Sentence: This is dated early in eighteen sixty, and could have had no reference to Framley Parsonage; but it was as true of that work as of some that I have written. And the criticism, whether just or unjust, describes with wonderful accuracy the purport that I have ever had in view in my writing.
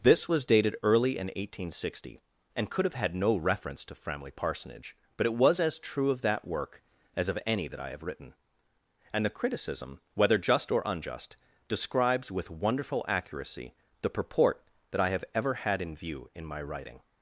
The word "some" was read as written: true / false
false